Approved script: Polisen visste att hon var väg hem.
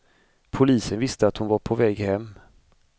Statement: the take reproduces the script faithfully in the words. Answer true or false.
false